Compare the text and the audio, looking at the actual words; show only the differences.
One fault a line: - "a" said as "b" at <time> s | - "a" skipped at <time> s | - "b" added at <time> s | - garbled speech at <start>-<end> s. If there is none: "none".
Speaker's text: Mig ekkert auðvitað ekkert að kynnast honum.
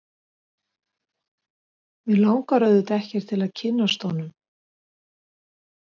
- "ekkert" said as "langar" at 2.2 s
- "til" added at 3.3 s